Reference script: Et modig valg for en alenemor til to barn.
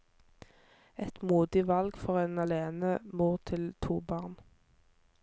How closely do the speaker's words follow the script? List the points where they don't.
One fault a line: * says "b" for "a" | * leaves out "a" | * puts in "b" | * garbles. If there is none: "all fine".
all fine